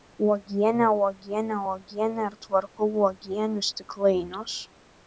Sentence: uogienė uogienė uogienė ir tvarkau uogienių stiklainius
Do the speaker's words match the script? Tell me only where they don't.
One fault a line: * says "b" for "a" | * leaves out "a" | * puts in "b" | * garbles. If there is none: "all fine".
all fine